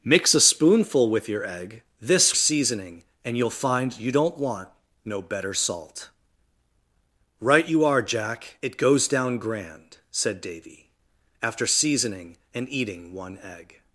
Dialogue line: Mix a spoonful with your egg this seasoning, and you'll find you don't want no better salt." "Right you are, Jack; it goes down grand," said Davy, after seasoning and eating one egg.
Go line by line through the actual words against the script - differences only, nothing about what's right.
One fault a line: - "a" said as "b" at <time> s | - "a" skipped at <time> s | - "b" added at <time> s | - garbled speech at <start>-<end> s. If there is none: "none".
none